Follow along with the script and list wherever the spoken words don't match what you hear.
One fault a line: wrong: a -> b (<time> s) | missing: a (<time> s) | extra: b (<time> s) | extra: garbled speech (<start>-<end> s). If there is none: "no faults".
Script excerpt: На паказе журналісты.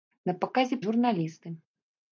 no faults